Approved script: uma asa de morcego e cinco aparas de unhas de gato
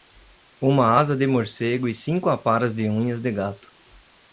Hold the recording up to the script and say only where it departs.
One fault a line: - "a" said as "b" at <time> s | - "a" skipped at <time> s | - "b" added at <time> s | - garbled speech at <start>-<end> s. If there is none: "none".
none